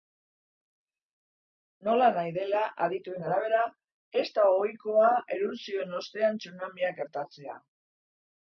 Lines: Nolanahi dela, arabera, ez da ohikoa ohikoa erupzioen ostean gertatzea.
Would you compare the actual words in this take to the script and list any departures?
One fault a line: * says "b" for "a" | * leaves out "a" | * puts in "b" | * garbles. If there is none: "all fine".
* puts in "adituen"
* leaves out "ohikoa"
* puts in "tsunamiak"